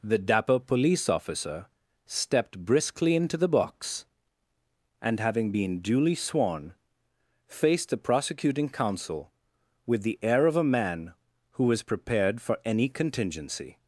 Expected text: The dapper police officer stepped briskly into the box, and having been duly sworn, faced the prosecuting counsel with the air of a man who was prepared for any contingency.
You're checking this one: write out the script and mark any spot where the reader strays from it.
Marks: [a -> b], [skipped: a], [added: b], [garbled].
The dapper police officer stepped briskly into the box, and having been duly sworn, faced the prosecuting counsel with the air of a man who was prepared for any contingency.